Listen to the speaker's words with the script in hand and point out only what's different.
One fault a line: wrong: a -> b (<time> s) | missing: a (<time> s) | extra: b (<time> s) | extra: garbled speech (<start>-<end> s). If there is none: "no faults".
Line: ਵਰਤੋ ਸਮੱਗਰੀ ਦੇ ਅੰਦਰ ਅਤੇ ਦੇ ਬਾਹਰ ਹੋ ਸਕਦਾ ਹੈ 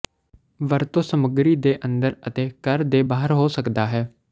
extra: ਘਰ (2.6 s)